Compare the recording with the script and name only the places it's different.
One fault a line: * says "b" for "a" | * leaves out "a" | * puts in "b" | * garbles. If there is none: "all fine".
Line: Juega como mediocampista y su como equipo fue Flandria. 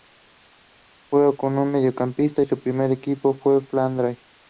* says "primer" for "como"